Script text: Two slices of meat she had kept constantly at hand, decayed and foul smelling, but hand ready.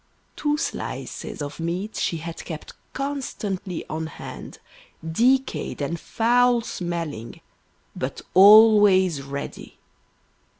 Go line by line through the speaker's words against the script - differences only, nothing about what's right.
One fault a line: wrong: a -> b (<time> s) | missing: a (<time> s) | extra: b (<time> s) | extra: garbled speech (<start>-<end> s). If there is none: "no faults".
wrong: at -> on (3.9 s)
wrong: hand -> always (8.3 s)